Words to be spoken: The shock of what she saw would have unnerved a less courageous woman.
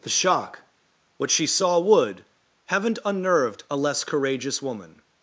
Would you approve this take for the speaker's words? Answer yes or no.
no